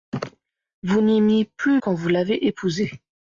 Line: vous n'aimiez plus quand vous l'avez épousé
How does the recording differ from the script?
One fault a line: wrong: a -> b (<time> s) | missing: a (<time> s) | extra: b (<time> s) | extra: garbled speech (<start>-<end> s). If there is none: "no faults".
no faults